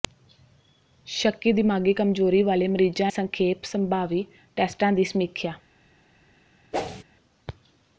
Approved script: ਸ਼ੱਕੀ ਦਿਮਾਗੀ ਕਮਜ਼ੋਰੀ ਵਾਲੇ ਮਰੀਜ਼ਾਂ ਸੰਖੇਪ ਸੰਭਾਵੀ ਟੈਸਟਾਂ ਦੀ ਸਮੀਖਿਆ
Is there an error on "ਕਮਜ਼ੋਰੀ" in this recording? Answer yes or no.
no